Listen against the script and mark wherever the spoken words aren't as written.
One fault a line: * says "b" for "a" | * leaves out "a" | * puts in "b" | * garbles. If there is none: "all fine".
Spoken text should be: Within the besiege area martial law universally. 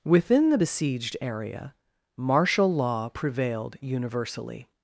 * says "besieged" for "besiege"
* puts in "prevailed"